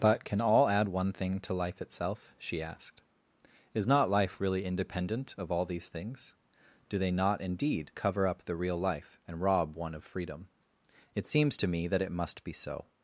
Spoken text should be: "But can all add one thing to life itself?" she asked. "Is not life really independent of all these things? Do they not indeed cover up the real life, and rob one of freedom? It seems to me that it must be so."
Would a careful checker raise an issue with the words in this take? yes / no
no